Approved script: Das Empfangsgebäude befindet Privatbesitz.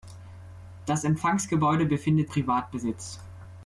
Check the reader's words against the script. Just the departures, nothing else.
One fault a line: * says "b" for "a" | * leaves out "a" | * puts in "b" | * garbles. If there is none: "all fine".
all fine